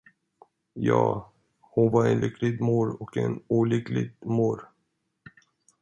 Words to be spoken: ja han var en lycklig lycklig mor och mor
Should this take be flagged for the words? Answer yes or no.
yes